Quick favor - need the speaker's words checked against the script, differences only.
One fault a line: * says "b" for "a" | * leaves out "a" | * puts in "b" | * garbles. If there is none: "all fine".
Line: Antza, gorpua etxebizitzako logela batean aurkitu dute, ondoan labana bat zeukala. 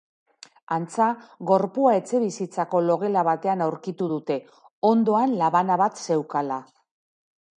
all fine